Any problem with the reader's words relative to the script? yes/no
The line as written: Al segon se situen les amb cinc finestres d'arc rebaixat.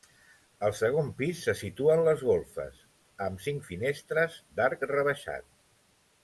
yes